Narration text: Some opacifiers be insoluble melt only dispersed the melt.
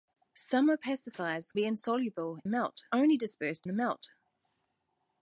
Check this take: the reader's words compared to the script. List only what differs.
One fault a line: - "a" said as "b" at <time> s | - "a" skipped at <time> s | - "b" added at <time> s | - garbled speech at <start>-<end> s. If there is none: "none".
none